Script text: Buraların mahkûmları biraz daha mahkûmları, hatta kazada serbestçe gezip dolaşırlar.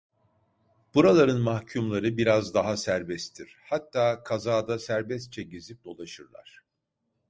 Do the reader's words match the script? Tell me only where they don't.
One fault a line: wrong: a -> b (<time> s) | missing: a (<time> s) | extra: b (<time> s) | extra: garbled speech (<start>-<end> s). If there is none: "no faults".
wrong: mahkûmları -> serbesttir (2.8 s)